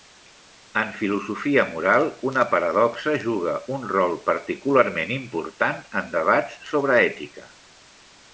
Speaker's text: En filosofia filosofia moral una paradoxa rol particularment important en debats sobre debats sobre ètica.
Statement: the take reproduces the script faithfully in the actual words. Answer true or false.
false